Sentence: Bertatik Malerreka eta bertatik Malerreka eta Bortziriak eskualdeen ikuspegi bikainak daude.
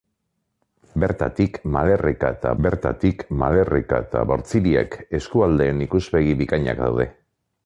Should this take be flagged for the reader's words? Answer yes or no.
no